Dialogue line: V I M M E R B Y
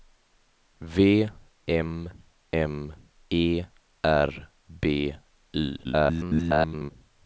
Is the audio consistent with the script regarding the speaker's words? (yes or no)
no